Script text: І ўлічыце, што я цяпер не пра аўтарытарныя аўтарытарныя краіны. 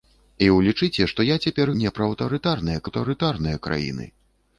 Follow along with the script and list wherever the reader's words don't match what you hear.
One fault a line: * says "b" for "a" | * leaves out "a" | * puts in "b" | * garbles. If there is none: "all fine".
all fine